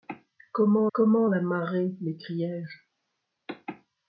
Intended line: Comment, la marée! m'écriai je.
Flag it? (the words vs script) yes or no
yes